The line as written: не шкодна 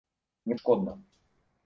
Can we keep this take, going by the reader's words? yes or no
yes